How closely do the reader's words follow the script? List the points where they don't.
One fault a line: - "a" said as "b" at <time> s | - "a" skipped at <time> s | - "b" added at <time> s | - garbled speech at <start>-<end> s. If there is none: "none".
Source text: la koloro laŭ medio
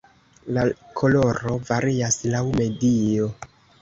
- "varias" added at 1.7 s